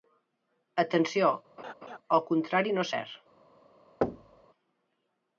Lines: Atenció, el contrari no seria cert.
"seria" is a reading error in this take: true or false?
true